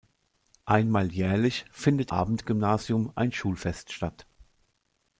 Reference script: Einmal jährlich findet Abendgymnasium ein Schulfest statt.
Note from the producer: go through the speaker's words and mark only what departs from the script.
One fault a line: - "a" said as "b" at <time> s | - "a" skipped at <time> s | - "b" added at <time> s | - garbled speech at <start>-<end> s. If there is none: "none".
none